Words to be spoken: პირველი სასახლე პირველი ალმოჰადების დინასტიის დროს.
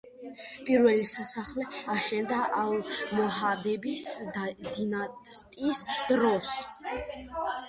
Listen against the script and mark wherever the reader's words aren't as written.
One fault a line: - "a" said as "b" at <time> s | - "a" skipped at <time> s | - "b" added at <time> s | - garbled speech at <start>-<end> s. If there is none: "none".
- "პირველი" said as "აშენდა" at 1.9 s